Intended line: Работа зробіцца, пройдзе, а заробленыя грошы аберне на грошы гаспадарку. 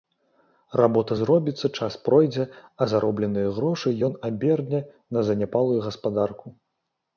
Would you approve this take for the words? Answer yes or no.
no